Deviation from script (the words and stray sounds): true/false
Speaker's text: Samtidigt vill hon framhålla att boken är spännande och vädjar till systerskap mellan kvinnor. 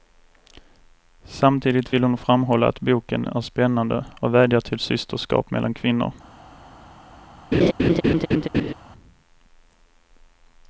true